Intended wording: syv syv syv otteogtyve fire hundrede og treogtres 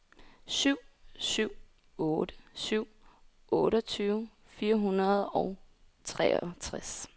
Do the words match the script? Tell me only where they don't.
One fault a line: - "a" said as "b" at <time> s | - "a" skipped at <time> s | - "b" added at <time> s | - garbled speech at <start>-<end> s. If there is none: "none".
- "otte" added at 2.0 s